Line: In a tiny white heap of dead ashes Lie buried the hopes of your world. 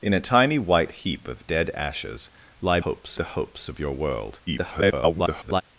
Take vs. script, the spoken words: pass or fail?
fail